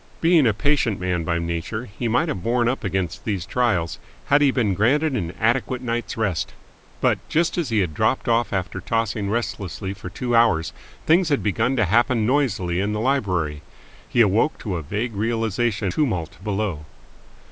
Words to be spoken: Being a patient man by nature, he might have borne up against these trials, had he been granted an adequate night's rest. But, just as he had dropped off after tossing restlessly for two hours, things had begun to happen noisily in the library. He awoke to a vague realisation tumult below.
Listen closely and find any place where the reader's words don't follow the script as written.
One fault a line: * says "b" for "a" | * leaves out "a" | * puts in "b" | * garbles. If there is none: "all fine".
all fine